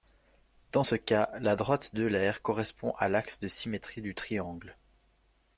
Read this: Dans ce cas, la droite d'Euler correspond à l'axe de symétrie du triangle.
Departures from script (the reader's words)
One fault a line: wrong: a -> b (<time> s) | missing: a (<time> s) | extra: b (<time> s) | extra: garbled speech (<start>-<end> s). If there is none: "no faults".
no faults